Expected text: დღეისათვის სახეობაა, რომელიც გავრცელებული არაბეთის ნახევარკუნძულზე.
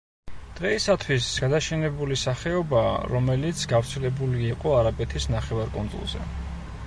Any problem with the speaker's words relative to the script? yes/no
yes